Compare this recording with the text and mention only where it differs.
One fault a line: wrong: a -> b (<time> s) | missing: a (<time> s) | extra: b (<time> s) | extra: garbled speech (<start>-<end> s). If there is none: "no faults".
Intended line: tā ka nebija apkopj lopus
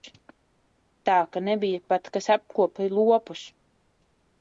extra: pat kas (1.9 s)